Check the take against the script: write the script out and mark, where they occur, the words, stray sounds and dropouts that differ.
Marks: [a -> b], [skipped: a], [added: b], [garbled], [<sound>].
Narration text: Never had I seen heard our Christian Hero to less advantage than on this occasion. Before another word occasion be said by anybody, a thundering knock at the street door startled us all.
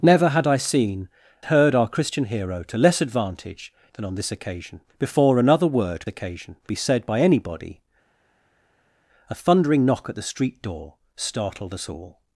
Never had I seen heard our Christian Hero to less advantage than on this occasion. Before another word occasion be said by anybody, a thundering knock at the street door startled us all.